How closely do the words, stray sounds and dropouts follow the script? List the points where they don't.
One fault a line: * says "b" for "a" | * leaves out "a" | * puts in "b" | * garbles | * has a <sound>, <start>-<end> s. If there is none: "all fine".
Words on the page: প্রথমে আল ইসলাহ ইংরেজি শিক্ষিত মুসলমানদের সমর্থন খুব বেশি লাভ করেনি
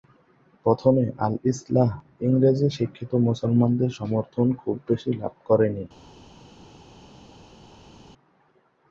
all fine